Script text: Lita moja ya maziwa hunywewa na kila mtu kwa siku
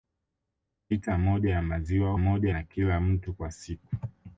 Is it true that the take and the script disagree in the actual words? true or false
true